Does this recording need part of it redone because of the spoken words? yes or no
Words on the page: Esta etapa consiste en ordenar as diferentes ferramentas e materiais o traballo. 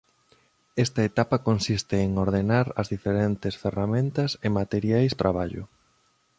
no